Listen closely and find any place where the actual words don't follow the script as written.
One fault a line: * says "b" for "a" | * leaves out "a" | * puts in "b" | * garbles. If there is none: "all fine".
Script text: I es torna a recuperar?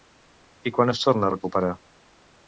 * puts in "quan"